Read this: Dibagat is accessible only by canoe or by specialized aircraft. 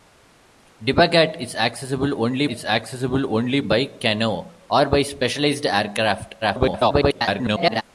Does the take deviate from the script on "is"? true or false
false